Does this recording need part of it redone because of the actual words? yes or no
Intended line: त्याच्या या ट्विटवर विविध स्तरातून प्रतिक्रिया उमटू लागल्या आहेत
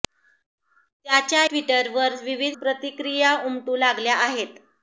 yes